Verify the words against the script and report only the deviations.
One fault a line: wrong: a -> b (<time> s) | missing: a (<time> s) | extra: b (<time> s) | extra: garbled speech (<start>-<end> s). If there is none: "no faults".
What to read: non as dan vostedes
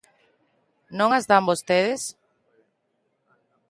no faults